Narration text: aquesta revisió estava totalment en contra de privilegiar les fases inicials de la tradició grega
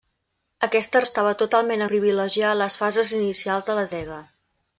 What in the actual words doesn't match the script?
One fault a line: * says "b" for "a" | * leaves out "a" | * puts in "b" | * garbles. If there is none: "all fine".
* leaves out "revisió"
* leaves out "en contra de"
* leaves out "tradició"